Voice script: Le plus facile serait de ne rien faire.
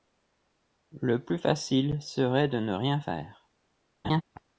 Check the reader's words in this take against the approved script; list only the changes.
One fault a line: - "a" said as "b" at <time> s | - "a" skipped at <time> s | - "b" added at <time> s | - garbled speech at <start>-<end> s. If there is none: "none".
none